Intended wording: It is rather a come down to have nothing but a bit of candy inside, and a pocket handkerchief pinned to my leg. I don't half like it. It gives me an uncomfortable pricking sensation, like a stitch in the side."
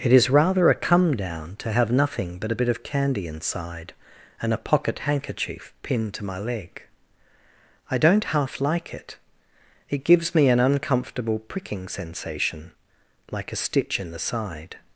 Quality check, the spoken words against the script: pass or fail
pass